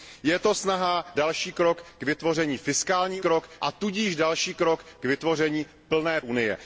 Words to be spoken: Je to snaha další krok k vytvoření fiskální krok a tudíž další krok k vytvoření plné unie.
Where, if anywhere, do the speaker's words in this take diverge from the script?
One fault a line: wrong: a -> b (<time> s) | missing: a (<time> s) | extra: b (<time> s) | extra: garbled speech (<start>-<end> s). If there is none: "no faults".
no faults